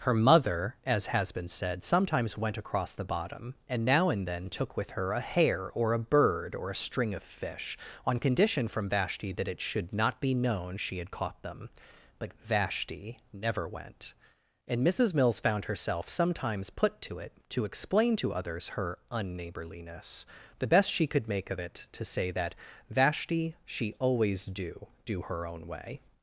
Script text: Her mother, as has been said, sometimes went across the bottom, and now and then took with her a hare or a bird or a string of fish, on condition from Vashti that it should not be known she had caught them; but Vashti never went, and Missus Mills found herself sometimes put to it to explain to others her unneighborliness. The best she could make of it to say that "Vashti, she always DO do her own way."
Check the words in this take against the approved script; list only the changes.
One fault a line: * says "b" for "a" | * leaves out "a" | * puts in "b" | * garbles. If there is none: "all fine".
all fine